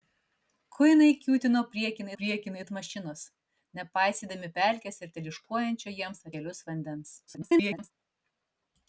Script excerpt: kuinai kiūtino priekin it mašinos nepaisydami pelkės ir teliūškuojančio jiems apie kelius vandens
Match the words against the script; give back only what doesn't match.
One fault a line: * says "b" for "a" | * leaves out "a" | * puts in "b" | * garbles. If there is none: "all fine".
* puts in "priekin"
* leaves out "apie"
* garbles